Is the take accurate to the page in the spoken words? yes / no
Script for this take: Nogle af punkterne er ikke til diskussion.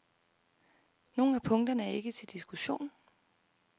yes